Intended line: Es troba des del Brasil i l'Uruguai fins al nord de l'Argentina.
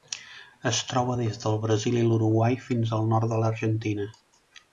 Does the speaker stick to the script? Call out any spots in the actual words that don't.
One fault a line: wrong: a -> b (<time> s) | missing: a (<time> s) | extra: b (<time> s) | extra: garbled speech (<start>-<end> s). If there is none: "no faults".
no faults